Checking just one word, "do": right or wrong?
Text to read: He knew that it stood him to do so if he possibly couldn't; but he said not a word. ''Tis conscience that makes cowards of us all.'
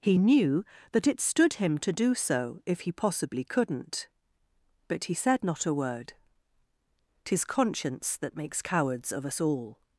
right